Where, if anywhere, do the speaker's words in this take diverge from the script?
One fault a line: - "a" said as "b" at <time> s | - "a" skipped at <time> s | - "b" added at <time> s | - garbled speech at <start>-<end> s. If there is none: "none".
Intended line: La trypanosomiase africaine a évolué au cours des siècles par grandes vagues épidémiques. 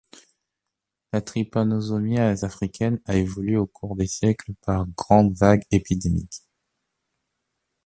none